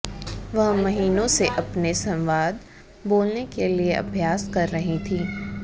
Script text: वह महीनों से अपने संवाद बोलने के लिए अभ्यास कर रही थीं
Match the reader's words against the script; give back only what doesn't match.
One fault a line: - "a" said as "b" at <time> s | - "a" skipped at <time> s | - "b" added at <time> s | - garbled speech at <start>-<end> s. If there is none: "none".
none